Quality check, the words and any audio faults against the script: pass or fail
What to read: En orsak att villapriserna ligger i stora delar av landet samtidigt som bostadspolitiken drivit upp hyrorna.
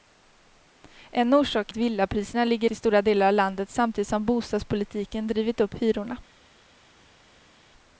pass